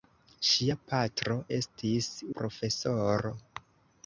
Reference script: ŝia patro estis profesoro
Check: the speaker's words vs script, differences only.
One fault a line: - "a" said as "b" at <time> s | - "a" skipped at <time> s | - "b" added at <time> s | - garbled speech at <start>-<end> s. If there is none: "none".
none